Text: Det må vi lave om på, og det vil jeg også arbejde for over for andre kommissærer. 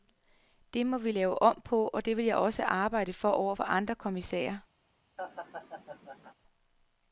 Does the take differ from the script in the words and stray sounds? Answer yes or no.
yes